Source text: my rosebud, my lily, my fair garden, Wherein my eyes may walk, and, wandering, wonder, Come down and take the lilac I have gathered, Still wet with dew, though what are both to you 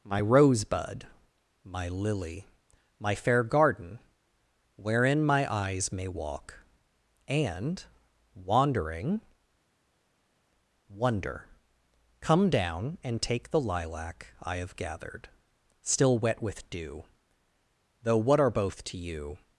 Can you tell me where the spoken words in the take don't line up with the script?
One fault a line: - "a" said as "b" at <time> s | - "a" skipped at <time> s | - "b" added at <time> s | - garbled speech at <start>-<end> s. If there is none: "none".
none